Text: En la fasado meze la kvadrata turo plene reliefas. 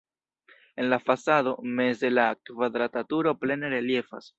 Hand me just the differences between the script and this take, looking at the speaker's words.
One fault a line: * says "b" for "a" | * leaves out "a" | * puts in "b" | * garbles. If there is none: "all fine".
all fine